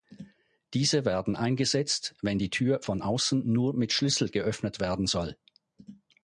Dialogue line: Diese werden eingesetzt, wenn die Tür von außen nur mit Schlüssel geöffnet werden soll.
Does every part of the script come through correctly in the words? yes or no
yes